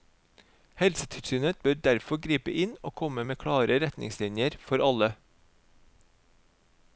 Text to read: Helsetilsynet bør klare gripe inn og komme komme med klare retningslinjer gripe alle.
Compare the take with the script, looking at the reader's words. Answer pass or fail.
fail